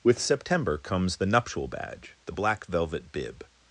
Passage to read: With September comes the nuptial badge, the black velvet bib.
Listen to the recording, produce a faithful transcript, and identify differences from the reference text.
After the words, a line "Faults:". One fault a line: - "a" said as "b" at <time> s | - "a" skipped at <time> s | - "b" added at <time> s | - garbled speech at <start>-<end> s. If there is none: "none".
With September comes the nuptial badge, the black velvet bib.
Faults:
none